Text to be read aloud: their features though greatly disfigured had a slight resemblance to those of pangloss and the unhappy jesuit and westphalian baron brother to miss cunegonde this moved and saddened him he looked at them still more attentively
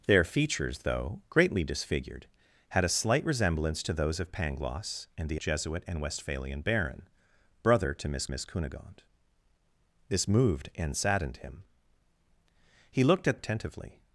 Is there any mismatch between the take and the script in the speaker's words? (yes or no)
yes